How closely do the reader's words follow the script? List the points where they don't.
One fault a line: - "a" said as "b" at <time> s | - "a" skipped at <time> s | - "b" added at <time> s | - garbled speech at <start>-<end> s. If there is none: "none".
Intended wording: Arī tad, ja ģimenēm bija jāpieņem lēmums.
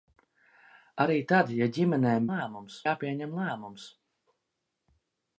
- "bija" said as "lēmums" at 2.3 s